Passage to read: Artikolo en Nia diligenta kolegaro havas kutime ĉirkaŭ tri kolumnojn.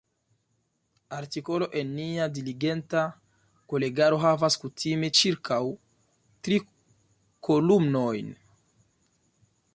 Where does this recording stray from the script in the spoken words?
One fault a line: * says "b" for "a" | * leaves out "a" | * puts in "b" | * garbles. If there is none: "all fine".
all fine